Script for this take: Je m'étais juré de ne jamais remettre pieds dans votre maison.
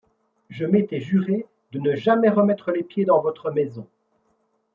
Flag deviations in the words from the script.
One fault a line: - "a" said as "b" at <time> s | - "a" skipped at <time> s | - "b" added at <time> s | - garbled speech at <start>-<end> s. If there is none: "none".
- "les" added at 2.7 s